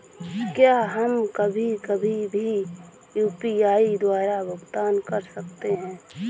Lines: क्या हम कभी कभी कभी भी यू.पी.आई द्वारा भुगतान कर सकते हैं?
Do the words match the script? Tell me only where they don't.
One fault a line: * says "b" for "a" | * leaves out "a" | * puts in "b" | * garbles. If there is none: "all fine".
* leaves out "कभी"